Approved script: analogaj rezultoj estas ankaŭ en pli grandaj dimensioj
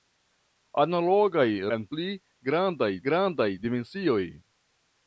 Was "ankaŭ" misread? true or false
true